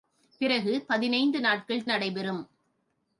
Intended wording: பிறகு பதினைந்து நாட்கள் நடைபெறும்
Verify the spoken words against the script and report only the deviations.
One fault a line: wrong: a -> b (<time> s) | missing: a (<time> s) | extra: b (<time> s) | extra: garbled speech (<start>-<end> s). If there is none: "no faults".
no faults